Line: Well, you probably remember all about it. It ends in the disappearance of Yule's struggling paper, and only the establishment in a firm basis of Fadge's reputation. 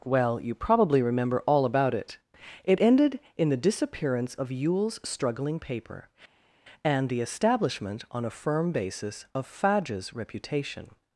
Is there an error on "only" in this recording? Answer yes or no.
yes